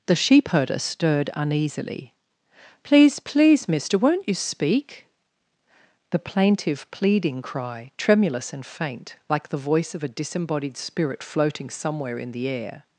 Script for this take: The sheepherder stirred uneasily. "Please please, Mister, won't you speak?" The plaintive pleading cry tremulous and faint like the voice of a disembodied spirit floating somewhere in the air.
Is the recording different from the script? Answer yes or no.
no